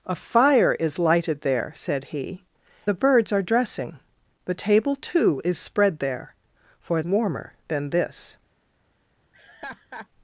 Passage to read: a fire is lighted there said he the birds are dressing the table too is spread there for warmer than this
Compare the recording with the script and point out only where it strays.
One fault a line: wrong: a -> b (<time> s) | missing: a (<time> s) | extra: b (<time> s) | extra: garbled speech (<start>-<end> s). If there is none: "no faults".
no faults